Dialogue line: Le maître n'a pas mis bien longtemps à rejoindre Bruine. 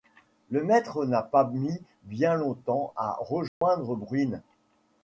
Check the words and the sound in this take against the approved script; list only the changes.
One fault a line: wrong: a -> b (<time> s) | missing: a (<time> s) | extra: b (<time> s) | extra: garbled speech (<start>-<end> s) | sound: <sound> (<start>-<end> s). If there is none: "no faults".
sound: dropout (3.5-3.6 s)